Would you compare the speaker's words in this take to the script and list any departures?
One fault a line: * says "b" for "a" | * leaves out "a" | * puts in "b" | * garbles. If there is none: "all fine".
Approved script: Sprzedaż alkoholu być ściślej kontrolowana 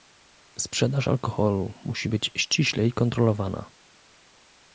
* puts in "musi"